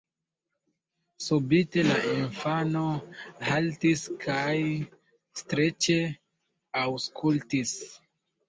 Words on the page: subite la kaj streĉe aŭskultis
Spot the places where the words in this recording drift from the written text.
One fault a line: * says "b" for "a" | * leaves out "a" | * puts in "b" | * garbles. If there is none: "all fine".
* puts in "infano haltis"